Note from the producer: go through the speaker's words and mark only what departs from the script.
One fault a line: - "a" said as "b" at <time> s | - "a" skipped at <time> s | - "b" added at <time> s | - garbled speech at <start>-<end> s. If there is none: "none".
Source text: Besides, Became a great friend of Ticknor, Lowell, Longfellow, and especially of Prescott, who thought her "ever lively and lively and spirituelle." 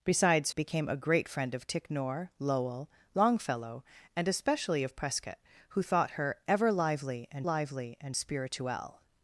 none